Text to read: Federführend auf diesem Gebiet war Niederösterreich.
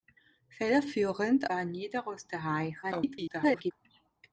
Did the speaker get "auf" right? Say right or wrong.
wrong